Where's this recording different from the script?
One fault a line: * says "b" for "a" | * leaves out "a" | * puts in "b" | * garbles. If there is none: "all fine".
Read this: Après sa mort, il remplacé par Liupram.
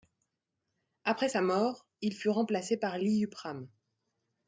* puts in "fut"